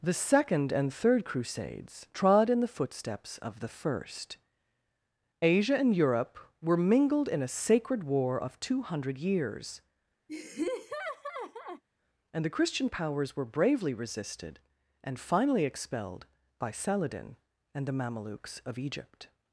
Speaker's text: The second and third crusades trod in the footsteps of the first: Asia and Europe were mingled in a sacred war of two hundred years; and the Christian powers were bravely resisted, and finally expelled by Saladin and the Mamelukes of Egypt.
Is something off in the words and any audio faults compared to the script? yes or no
yes